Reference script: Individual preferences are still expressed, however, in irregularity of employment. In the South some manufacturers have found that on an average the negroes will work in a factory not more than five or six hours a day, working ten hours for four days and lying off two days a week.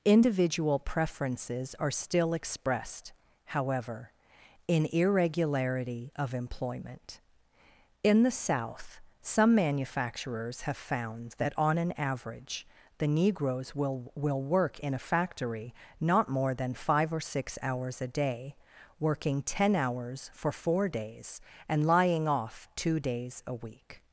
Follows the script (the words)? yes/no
no